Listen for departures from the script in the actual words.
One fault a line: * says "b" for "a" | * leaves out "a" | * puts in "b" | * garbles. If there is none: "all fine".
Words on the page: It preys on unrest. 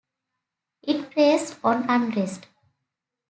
all fine